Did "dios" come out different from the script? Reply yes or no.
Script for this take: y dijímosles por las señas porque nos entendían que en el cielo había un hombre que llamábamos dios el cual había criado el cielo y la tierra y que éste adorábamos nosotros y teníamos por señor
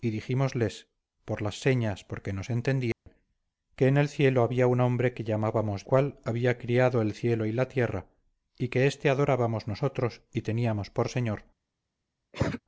yes